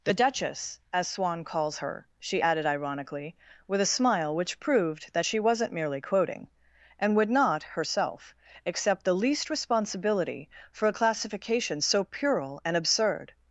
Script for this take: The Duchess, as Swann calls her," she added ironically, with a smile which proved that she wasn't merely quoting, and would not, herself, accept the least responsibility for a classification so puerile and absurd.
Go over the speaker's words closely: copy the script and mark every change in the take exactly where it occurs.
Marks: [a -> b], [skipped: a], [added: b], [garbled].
The Duchess, as Swann calls her," she added ironically, with a smile which proved that she wasn't merely quoting, and would not, herself, accept the least responsibility for a classification so puerile and absurd.